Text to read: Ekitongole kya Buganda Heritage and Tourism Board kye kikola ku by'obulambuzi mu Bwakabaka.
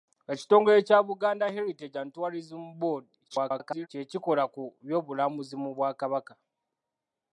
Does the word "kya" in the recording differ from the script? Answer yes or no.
no